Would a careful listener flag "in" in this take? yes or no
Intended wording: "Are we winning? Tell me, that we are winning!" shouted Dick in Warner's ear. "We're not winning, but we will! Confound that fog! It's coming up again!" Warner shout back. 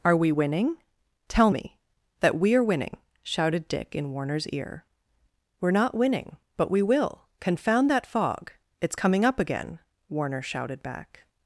no